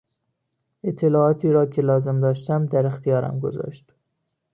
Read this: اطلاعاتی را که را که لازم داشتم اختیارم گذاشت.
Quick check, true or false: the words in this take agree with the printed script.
false